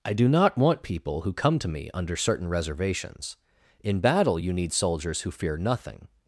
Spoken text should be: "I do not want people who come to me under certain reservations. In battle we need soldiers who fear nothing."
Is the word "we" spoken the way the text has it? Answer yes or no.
no